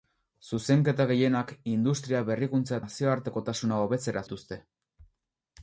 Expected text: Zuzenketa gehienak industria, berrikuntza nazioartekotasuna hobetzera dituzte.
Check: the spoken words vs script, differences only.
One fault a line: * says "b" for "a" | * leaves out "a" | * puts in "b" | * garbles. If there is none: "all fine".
all fine